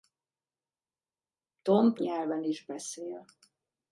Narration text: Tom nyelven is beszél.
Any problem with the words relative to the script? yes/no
no